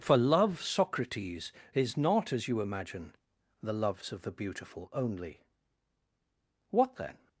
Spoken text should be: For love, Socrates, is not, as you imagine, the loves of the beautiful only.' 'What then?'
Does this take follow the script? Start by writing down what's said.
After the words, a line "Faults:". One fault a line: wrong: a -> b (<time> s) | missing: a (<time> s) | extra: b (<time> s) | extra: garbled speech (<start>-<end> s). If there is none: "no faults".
For love, Socrates, is not, as you imagine, the loves of the beautiful only.' 'What then?'
Faults:
no faults